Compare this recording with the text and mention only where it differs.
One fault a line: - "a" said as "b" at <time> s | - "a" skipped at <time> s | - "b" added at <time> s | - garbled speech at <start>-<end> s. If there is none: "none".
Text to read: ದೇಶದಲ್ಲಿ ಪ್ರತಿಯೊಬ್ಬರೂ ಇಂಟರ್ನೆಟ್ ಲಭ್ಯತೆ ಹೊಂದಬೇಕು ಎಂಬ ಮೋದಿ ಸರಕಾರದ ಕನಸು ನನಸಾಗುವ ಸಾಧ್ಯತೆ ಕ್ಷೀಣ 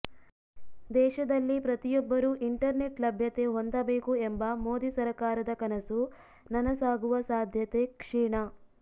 none